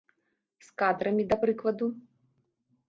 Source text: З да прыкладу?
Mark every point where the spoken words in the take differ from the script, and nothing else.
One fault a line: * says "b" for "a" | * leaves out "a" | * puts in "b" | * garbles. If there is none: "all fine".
* puts in "кадрамі"